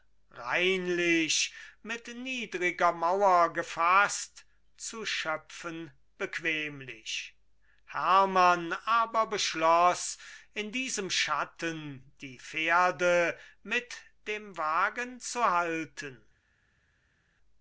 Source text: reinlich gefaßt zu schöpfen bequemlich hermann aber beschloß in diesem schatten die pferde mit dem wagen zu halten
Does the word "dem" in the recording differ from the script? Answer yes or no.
no